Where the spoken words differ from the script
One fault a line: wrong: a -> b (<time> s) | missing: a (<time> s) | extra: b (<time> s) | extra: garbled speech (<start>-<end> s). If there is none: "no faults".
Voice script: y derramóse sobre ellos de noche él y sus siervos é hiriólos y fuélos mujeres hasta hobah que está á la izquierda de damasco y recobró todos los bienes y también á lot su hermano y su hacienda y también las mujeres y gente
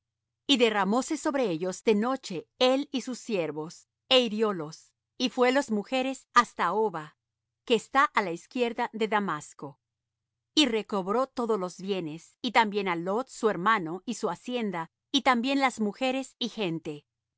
no faults